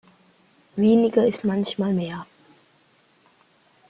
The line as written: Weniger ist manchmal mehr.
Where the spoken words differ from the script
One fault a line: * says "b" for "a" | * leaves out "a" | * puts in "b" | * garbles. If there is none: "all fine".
all fine